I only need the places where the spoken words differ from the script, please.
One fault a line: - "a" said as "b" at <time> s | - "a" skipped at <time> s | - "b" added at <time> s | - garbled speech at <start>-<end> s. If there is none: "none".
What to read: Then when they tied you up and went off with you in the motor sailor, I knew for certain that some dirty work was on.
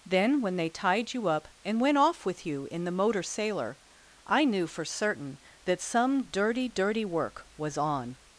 - "dirty" added at 6.7 s